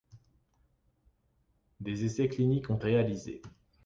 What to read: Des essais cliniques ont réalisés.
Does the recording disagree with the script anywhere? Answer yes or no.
no